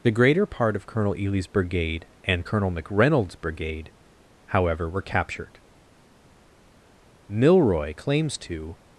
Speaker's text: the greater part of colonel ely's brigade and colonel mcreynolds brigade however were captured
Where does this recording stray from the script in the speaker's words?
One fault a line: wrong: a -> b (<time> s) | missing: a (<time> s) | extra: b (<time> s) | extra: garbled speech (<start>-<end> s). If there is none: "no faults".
extra: milroy claims to (7.3 s)